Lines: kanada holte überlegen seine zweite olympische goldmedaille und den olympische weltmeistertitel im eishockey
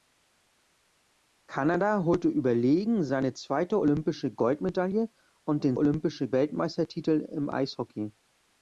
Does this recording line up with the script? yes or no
yes